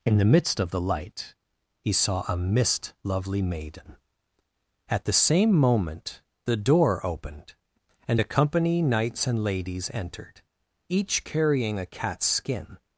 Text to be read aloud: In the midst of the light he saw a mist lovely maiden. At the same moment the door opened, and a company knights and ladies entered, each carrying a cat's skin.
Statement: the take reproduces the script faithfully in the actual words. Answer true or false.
true